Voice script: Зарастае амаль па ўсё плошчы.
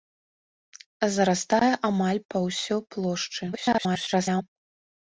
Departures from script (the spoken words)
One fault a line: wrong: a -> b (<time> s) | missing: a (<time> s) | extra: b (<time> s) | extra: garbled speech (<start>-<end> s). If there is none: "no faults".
extra: garbled speech (3.5-4.4 s)